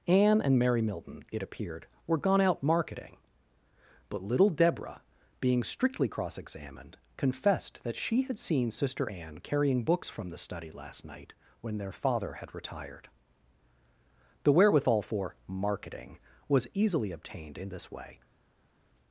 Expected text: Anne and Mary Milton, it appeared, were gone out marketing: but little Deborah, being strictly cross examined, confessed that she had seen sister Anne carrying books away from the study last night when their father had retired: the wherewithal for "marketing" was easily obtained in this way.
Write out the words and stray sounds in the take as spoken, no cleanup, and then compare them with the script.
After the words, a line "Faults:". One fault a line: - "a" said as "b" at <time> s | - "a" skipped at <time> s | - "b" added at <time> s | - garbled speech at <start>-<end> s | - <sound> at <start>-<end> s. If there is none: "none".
Anne and Mary Milton, it appeared, were gone out marketing: but little Deborah, being strictly cross examined, confessed that she had seen sister Anne carrying books from the study last night when their father had retired: the wherewithal for "marketing" was easily obtained in this way.
Faults:
- "away" skipped at 10.1 s